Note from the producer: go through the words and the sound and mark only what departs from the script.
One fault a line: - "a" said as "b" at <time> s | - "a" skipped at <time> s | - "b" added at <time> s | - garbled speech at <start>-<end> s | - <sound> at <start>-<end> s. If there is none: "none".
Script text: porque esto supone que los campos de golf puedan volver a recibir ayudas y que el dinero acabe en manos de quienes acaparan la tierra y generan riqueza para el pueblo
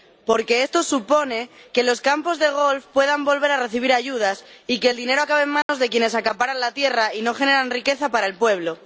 - dropout at 5.6-5.7 s
- "no" added at 7.2 s